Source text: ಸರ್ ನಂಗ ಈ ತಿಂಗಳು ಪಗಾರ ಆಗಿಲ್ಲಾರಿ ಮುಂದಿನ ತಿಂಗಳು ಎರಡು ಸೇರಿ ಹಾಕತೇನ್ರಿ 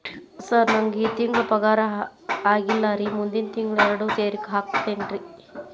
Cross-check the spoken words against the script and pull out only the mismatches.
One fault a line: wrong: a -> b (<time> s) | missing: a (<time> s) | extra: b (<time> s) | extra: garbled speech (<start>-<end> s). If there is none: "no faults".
no faults